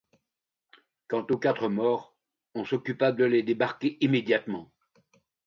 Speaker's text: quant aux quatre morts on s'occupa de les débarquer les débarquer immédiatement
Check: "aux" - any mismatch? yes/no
no